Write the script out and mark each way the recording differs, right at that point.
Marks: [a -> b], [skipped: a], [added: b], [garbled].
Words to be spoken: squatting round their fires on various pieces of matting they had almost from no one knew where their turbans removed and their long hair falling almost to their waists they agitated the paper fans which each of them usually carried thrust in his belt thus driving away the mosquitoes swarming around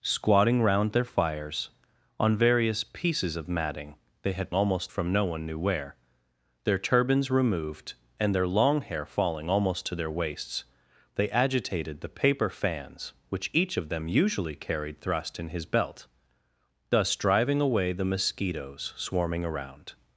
squatting round their fires on various pieces of matting they had almost from no one knew where their turbans removed and their long hair falling almost to their waists they agitated the paper fans which each of them usually carried thrust in his belt thus driving away the mosquitoes swarming around